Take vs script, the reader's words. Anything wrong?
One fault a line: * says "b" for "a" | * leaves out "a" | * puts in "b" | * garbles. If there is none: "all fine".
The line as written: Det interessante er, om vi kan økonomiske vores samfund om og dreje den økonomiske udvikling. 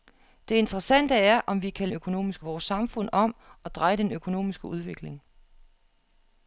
all fine